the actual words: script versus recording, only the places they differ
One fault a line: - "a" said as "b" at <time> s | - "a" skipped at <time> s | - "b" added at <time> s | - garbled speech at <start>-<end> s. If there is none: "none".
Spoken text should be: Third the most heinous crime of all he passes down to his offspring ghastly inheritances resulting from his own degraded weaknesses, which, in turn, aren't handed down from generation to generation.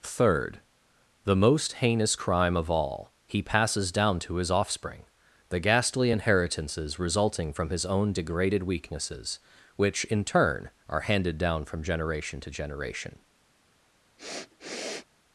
- "the" added at 5.5 s
- "aren't" said as "are" at 10.9 s